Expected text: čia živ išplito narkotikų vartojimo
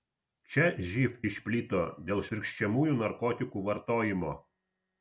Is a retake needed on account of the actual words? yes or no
yes